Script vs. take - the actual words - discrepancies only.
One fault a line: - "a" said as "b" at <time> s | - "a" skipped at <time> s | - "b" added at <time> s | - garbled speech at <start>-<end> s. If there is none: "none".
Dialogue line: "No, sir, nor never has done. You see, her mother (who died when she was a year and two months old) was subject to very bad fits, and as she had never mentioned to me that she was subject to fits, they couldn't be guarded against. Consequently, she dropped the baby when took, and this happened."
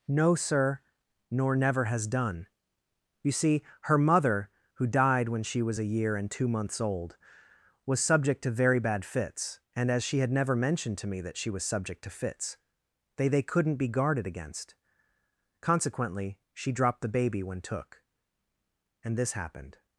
- "they" added at 13.3 s